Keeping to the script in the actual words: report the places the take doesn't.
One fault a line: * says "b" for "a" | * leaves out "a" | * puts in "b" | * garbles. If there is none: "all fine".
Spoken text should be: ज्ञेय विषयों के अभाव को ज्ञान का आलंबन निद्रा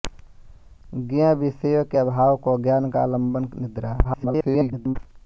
* garbles